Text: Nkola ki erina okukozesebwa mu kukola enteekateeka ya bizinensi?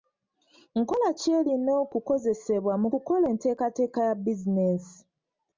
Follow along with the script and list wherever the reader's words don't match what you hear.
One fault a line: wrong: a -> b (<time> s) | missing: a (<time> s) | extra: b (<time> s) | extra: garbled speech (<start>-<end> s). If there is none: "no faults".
no faults